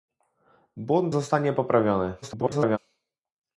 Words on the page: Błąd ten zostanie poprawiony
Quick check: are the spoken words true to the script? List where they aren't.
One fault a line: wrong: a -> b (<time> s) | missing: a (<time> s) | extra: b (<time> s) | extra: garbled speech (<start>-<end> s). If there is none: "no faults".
missing: ten (1.1 s)
extra: garbled speech (2.2-2.8 s)